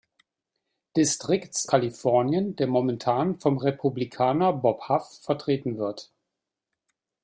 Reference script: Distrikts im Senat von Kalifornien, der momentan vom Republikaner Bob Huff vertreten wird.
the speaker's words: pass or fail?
fail